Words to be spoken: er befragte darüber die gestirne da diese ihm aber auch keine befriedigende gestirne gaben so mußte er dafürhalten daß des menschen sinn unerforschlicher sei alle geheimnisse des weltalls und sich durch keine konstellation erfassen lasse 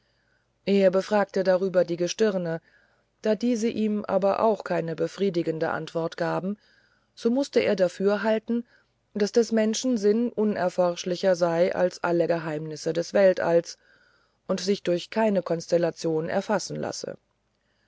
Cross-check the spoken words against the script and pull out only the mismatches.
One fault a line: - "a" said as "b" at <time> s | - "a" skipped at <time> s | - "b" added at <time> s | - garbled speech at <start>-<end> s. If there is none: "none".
- "gestirne" said as "antwort" at 5.7 s
- "als" added at 11.8 s